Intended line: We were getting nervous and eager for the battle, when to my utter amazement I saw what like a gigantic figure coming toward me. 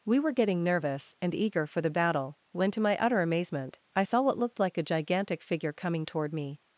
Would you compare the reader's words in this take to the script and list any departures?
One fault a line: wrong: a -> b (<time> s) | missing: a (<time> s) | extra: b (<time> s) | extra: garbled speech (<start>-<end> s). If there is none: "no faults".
extra: looked (4.4 s)